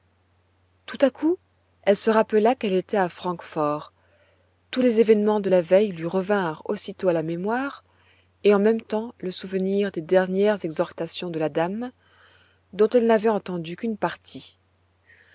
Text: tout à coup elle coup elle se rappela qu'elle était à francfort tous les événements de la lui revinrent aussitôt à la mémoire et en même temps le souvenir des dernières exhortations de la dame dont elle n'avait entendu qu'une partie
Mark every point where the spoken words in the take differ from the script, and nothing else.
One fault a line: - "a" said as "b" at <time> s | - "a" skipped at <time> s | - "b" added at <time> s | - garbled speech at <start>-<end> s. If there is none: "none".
- "coup elle" skipped at 1.9 s
- "veille" added at 5.6 s